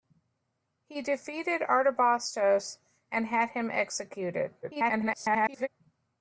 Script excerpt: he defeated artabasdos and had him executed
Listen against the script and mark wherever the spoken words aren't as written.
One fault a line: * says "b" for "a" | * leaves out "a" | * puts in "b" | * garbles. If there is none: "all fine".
* garbles